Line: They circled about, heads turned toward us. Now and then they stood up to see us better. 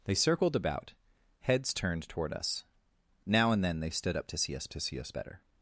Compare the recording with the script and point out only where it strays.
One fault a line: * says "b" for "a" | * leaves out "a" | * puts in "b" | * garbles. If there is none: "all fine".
* puts in "to see us"